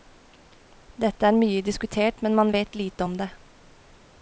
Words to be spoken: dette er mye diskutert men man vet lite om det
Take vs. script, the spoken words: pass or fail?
pass